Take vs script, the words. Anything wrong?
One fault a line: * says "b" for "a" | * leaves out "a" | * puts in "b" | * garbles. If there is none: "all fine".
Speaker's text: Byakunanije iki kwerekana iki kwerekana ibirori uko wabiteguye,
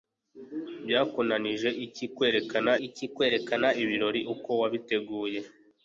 all fine